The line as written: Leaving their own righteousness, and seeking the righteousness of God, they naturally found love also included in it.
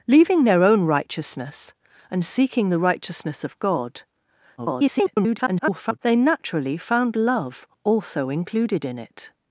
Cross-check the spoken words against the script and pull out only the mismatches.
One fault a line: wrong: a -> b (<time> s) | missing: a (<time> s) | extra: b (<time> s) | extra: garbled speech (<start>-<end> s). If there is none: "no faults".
extra: garbled speech (4.6-6.0 s)